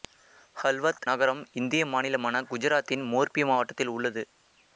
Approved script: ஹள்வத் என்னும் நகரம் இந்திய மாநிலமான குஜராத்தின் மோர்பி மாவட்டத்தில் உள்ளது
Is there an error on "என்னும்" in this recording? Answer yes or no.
yes